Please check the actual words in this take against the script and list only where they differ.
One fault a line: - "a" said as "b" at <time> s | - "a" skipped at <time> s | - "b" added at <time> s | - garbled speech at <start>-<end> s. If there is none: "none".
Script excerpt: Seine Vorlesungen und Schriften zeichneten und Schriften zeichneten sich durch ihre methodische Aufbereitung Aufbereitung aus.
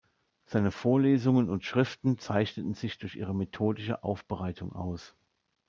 - "und Schriften zeichneten" skipped at 2.7 s
- "Aufbereitung" skipped at 4.7 s